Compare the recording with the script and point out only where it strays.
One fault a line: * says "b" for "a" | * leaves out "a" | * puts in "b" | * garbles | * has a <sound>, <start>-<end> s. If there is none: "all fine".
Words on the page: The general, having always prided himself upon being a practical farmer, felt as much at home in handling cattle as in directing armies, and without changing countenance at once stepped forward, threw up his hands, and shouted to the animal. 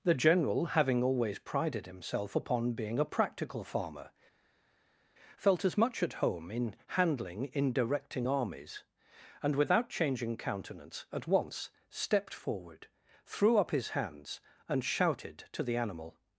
* leaves out "cattle as"